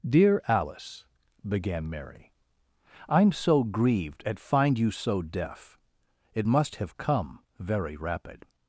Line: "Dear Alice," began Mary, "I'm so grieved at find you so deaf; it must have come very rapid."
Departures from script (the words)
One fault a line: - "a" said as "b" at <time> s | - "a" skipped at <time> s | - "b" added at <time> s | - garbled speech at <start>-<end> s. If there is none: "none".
none